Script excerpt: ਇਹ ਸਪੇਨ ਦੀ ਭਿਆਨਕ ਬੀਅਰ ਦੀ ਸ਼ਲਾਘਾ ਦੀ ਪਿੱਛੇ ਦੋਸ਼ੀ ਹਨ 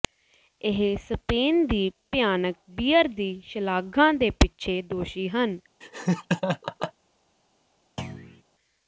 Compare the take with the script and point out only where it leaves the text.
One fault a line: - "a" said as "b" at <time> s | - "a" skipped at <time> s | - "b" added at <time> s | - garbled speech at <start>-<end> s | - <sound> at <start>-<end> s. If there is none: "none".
- "ਦੀ" said as "ਦੇ" at 4.1 s
- laugh at 5.8-6.9 s
- thud at 8.0-8.4 s